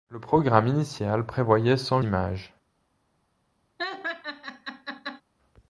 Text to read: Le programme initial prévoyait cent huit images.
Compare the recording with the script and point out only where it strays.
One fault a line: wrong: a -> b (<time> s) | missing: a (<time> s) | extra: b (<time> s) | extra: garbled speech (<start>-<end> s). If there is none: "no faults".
missing: huit (2.0 s)